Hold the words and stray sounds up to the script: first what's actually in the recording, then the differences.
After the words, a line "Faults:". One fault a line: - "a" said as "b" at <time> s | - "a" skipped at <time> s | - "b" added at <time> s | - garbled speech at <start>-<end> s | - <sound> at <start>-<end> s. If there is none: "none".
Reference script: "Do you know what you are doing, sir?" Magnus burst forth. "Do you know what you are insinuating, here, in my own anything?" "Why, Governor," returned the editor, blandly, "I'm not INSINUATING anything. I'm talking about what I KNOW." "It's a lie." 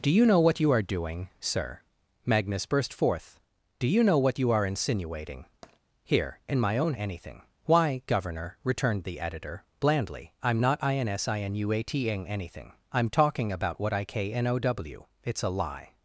"Do you know what you are doing, sir?" Magnus burst forth. "Do you know what you are insinuating, here, in my own anything?" "Why, Governor," returned the editor, blandly, "I'm not INSINUATING anything. I'm talking about what I KNOW." "It's a lie."
Faults:
- tap at 5.6-5.8 s